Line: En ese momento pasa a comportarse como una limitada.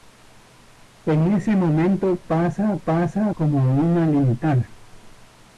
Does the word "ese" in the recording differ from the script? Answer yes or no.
no